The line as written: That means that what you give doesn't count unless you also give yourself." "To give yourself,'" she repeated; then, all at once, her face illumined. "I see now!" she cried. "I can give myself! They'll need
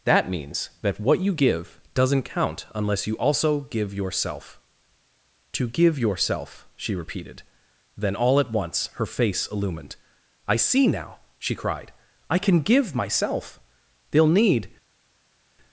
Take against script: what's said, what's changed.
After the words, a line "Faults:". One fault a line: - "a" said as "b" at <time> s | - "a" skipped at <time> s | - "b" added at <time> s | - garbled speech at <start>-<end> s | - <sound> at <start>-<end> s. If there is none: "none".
That means that what you give doesn't count unless you also give yourself." "To give yourself,'" she repeated; then, all at once, her face illumined. "I see now!" she cried. "I can give myself! They'll need
Faults:
none